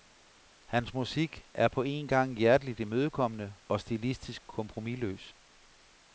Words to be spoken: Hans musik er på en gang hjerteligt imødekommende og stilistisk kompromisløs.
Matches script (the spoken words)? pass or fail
pass